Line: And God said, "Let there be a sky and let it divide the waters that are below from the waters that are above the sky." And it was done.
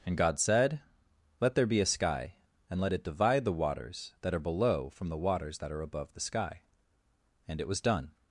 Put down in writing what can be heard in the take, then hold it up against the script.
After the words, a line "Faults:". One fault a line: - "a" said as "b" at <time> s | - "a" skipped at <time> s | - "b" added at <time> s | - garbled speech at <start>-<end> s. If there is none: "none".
And God said, "Let there be a sky and let it divide the waters that are below from the waters that are above the sky." And it was done.
Faults:
none